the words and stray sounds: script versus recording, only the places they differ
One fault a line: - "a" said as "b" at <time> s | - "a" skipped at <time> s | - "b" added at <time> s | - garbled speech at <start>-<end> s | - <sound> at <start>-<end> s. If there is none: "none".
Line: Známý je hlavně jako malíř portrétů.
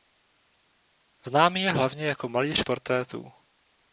none